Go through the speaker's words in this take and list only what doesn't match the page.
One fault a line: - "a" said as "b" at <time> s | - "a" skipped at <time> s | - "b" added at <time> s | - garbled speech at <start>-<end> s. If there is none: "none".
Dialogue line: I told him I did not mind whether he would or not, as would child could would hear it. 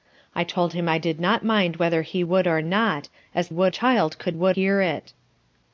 none